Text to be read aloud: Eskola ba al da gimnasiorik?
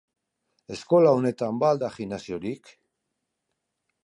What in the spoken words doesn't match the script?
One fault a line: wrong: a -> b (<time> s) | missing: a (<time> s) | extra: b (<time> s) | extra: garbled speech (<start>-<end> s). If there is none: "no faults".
extra: honetan (1.2 s)